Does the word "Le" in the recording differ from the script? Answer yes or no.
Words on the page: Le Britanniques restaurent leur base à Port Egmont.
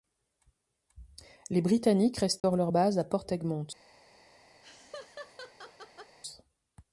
yes